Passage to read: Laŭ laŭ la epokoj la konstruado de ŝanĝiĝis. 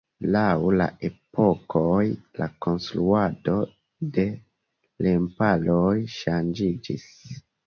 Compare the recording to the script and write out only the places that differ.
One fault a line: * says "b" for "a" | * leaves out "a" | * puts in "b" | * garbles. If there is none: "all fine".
* leaves out "laŭ"
* puts in "remparoj"